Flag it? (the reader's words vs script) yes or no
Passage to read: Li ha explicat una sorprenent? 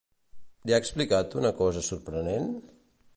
yes